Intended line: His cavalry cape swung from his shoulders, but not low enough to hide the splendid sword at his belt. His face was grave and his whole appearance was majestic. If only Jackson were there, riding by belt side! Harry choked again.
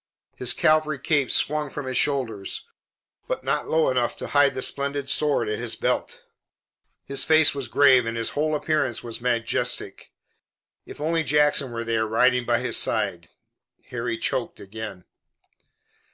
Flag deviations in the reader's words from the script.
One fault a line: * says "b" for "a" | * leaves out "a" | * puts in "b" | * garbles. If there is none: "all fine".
* says "his" for "belt"